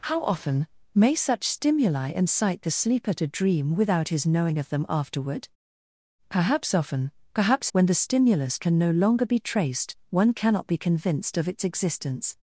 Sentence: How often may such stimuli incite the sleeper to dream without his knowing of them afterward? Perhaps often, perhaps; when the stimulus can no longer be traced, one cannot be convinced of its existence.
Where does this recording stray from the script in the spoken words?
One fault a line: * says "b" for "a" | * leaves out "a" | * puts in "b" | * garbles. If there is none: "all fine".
all fine